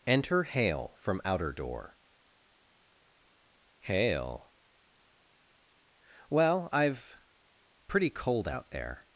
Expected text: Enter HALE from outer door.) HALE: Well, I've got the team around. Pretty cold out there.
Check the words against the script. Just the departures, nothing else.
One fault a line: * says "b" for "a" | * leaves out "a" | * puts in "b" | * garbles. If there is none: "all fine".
* leaves out "got the team around"